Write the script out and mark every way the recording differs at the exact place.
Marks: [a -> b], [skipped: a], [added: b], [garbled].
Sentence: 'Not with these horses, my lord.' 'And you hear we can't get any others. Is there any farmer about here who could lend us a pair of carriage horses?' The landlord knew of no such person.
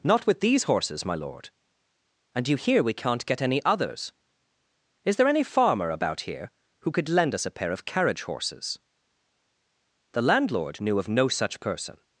'Not with these horses, my lord.' 'And you hear we can't get any others. Is there any farmer about here who could lend us a pair of carriage horses?' The landlord knew of no such person.